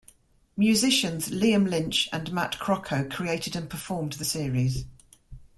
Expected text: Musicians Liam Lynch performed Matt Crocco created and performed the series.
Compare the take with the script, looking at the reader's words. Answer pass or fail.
fail